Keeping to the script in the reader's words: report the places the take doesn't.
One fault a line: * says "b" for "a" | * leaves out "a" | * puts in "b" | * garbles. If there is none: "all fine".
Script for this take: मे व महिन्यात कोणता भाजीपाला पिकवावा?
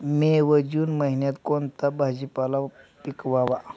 * puts in "जून"